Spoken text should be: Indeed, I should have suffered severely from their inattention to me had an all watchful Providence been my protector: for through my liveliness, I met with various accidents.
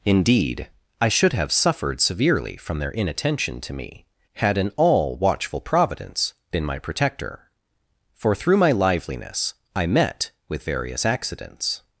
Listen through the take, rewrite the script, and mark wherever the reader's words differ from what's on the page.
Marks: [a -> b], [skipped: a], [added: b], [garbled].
Indeed, I should have suffered severely from their inattention to me had an all watchful Providence been my protector: for through my liveliness, I met with various accidents.